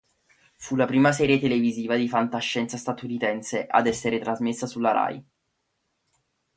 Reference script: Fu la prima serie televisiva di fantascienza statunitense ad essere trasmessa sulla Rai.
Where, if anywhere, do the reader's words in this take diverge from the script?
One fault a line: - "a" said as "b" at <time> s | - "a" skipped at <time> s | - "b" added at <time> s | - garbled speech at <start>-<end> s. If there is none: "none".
none